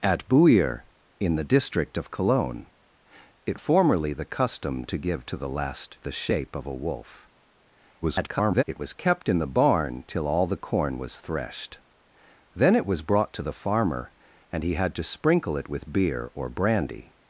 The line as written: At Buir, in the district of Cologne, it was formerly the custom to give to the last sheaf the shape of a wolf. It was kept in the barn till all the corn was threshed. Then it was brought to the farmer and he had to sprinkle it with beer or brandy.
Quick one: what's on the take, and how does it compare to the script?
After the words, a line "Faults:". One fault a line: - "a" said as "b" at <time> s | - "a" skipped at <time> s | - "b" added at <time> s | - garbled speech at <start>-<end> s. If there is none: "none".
At Buir, in the district of Cologne, it formerly the custom to give to the last the shape of a wolf. [garbled] It was kept in the barn till all the corn was threshed. Then it was brought to the farmer and he had to sprinkle it with beer or brandy.
Faults:
- "was" skipped at 3.6 s
- "sheaf" skipped at 6.0 s
- garbled speech at 8.0-8.6 s